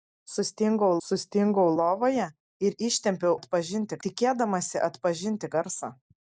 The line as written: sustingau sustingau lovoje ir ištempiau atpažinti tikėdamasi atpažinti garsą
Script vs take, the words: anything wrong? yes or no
no